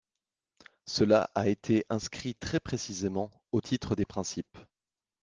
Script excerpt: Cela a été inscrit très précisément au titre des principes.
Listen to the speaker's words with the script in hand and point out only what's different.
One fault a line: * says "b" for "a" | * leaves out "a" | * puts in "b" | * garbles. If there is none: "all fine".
all fine